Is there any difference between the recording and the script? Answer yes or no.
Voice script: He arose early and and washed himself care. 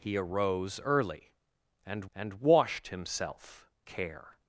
no